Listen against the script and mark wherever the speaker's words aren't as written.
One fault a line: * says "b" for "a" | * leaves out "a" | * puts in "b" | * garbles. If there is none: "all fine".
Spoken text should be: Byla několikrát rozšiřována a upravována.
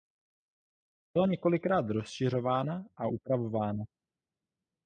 all fine